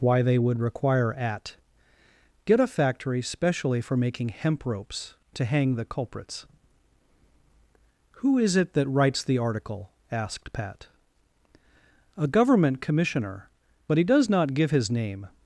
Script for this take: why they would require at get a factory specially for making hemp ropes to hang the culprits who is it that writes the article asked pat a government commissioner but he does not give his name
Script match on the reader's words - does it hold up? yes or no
yes